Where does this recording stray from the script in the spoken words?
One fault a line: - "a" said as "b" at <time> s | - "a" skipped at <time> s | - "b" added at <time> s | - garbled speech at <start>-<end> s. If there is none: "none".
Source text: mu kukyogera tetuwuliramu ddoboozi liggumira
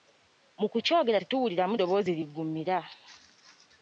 none